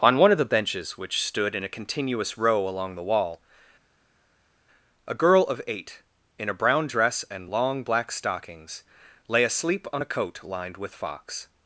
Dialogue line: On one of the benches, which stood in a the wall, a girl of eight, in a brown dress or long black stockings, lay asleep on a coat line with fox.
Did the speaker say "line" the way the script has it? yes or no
no